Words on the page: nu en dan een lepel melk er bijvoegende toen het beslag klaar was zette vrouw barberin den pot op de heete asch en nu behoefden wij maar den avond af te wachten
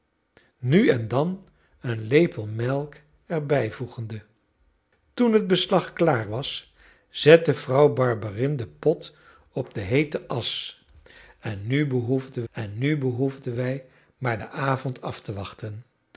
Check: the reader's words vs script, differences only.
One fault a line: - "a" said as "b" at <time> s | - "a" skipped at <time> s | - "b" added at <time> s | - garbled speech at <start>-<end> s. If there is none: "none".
- "en nu behoefden" added at 12.5 s